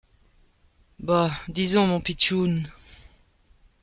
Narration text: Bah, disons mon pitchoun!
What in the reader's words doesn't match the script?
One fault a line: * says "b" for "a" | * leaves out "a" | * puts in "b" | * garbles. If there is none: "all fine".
all fine